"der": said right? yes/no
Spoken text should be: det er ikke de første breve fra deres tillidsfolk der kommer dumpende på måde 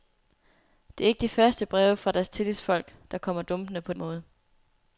yes